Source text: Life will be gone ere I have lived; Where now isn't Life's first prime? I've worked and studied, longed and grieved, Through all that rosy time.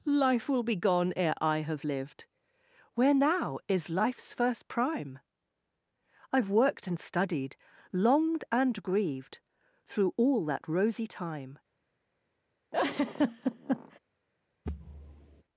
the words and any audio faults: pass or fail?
fail